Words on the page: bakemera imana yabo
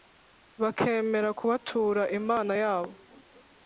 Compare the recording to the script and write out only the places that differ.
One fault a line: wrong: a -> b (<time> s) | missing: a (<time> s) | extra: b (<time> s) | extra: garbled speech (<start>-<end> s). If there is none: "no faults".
extra: kubatura (1.4 s)